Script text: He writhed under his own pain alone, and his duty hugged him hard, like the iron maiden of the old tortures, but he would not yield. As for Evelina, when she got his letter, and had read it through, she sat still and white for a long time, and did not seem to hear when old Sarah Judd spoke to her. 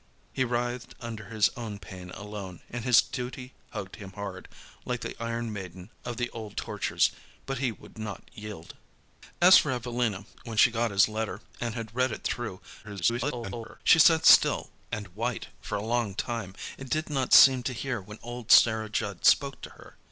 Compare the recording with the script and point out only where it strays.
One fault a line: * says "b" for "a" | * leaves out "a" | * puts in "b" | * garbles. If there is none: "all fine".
* garbles